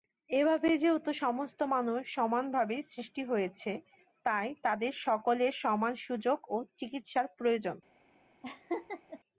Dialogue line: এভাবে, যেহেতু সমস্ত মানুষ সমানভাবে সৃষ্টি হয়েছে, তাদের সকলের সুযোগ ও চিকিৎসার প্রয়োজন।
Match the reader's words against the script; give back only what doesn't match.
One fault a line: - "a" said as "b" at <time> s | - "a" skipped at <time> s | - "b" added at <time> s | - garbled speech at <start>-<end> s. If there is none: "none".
- "তাই" added at 4.3 s
- "সমান" added at 5.6 s